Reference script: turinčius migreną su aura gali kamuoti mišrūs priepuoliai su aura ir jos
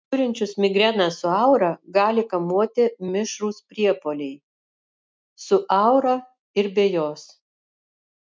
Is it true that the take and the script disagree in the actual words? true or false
true